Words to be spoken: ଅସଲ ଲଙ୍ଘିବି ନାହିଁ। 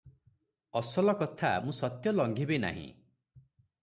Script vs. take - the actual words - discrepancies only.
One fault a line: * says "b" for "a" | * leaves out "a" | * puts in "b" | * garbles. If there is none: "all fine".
* puts in "କଥା ମୁଁ ସତ୍ୟ"